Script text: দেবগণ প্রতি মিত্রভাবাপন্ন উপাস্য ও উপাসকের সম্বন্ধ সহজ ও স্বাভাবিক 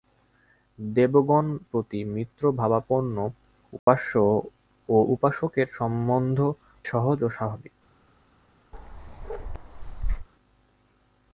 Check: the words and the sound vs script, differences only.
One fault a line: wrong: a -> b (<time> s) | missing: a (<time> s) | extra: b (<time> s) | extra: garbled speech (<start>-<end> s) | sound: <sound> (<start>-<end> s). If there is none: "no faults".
sound: dropout (3.8-3.9 s)
sound: bark (8.7-10.3 s)